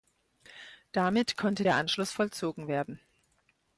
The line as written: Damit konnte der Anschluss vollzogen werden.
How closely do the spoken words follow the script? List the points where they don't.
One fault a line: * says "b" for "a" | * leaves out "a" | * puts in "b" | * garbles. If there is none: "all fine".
all fine